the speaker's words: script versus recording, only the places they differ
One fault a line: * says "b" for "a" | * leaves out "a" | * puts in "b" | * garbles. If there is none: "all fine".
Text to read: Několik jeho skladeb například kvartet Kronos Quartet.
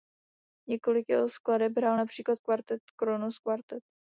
* puts in "hrál"